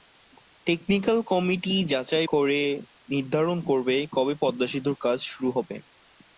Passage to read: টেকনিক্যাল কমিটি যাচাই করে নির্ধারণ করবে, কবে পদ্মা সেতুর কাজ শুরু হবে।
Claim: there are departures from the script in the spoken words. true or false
false